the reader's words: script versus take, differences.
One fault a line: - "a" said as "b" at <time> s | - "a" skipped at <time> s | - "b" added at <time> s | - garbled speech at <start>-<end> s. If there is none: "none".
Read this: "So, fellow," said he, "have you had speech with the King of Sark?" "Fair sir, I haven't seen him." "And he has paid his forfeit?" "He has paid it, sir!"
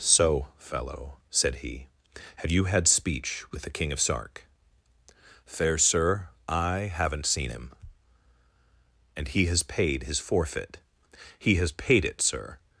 none